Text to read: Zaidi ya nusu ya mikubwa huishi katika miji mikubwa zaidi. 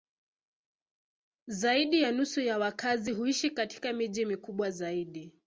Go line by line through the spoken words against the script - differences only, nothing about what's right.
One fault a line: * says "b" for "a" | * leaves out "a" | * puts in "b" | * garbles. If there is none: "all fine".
* says "wakazi" for "mikubwa"